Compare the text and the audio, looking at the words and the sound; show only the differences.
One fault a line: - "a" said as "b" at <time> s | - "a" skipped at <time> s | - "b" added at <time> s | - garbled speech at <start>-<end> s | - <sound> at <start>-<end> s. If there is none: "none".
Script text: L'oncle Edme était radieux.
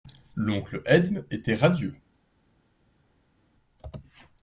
none